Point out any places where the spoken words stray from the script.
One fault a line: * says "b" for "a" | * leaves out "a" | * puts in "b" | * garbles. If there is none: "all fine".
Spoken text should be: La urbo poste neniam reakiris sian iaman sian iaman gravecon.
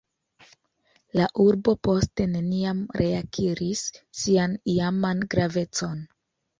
* leaves out "sian iaman"